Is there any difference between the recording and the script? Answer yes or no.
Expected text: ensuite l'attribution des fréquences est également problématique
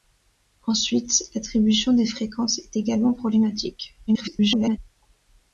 yes